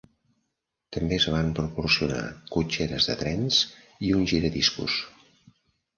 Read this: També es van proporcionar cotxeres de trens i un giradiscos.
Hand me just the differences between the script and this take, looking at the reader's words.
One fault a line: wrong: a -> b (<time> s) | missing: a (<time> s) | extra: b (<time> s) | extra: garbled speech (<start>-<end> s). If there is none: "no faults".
no faults